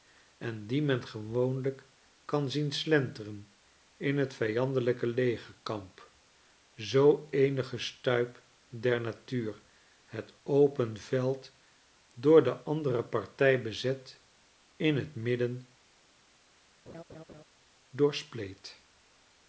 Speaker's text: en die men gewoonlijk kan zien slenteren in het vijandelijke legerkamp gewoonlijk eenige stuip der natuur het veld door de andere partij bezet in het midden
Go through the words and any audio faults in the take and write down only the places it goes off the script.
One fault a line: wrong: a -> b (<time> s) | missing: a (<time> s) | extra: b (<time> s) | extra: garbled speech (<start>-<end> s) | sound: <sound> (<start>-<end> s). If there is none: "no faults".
wrong: gewoonlijk -> zoo (6.8 s)
extra: open (10.4 s)
sound: laugh (16.9-17.4 s)